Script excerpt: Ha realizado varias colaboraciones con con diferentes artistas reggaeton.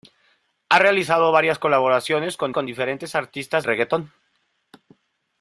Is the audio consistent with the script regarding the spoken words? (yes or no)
yes